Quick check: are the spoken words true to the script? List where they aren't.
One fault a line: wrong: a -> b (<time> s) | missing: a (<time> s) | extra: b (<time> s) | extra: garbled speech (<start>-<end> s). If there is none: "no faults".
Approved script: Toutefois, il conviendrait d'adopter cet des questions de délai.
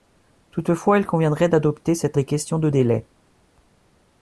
no faults